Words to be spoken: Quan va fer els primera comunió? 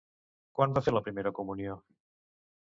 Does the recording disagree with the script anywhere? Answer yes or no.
yes